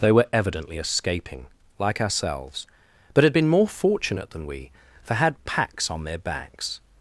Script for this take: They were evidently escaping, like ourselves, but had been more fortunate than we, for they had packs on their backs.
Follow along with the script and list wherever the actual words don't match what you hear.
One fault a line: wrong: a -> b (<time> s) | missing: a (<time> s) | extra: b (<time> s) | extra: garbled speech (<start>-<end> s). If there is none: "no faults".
missing: they (5.1 s)